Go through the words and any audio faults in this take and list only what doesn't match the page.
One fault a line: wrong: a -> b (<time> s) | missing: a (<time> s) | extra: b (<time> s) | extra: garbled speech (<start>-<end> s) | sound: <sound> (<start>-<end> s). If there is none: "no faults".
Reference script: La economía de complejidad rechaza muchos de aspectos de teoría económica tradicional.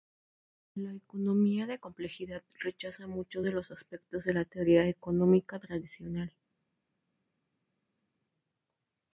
extra: los (3.5 s)
extra: la (4.3 s)